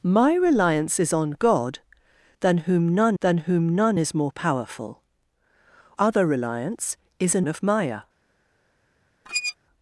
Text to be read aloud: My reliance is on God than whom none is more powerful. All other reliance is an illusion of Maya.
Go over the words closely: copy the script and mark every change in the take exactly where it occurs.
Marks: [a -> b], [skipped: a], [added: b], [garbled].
My reliance is on God than whom none [added: than whom none] is more powerful. [skipped: All] other reliance is an [skipped: illusion] of Maya.